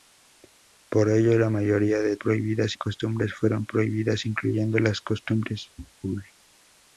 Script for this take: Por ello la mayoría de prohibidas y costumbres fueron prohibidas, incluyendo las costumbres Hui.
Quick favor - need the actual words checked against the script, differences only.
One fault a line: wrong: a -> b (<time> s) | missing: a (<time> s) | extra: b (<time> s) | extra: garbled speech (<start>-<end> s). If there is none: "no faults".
no faults